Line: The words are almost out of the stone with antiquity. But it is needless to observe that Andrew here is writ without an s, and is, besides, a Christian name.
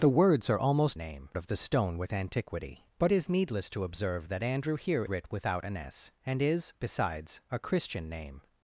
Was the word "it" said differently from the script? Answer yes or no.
yes